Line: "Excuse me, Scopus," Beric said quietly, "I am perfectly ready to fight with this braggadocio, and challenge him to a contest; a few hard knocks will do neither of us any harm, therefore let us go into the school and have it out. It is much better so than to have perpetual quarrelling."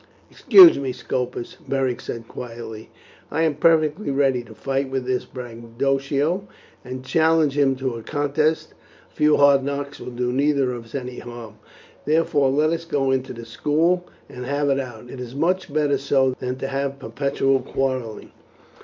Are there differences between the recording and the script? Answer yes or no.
no